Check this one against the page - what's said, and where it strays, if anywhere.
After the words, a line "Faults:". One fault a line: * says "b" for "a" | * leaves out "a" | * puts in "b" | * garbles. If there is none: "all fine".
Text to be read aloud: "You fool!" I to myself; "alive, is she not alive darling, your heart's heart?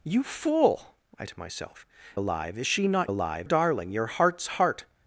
"You fool!" I to myself; "alive, is she not alive darling, your heart's heart?
Faults:
all fine